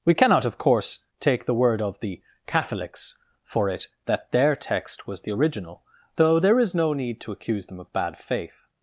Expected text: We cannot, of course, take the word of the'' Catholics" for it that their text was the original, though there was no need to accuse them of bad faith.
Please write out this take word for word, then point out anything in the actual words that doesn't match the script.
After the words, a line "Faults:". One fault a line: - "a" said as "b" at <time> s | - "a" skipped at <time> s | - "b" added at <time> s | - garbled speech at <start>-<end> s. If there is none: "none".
We cannot, of course, take the word of the'' Catholics" for it that their text was the original, though there is no need to accuse them of bad faith.
Faults:
- "was" said as "is" at 6.6 s